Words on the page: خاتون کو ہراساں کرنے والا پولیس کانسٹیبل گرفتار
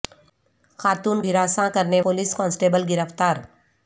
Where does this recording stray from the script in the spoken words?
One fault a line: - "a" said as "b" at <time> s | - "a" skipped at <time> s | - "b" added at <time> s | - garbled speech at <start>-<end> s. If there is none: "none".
- "کو" skipped at 1.2 s
- "والا" skipped at 2.0 s